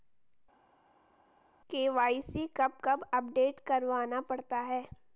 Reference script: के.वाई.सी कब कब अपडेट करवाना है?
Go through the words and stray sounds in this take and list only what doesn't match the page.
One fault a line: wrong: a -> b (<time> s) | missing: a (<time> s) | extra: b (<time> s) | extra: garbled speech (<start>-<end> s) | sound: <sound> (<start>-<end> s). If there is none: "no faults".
extra: पड़ता (4.3 s)